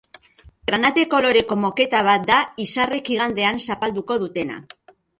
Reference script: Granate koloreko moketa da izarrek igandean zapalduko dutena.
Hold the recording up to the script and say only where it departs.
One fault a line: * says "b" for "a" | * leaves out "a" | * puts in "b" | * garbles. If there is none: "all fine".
* puts in "bat"